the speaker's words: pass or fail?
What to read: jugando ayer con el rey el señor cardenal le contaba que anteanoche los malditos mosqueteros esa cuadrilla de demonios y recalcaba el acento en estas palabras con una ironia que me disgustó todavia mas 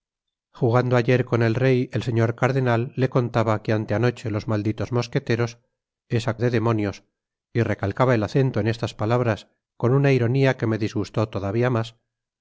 fail